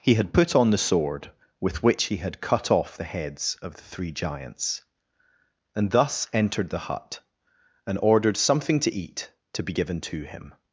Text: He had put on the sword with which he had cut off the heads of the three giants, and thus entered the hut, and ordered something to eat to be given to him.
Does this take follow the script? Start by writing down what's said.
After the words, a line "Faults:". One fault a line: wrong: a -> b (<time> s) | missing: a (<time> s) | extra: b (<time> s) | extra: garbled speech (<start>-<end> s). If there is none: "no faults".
He had put on the sword with which he had cut off the heads of the three giants, and thus entered the hut, and ordered something to eat to be given to him.
Faults:
no faults